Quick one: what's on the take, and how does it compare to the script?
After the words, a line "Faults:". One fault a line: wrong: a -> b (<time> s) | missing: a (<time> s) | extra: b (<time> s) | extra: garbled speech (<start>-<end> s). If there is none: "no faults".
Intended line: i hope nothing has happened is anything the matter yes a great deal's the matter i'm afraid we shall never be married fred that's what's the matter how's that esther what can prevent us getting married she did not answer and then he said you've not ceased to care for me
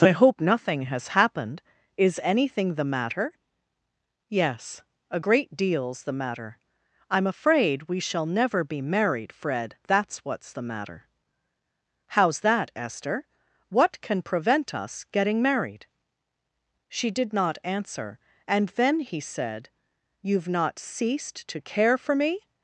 i hope nothing has happened is anything the matter yes a great deal's the matter i'm afraid we shall never be married fred that's what's the matter how's that esther what can prevent us getting married she did not answer and then he said you've not ceased to care for me
Faults:
no faults